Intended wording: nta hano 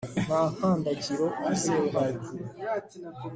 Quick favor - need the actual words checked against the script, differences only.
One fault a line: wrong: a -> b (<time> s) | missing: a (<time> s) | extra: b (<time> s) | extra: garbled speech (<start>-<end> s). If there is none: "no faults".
extra: nkandagiro yizewe (0.5 s)